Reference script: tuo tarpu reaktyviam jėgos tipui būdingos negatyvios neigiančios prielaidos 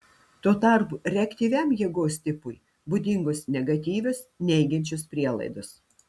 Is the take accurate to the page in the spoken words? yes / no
yes